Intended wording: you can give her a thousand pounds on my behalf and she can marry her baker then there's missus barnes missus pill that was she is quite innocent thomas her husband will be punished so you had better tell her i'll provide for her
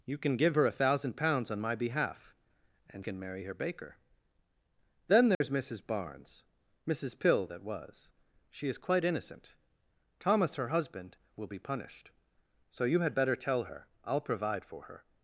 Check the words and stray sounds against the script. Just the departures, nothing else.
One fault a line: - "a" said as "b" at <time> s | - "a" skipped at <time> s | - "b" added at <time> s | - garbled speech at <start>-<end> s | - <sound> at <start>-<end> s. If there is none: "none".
- "she" skipped at 3.0 s
- dropout at 5.3-5.4 s